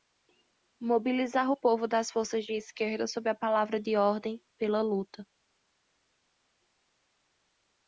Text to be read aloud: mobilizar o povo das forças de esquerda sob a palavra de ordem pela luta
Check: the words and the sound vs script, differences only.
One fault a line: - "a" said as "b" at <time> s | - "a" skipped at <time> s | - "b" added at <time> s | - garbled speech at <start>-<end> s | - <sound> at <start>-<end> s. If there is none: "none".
none